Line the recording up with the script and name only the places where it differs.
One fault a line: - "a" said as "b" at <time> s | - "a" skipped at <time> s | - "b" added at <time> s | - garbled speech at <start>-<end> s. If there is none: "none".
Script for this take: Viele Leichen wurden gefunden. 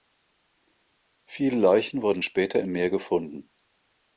- "später im Meer" added at 2.2 s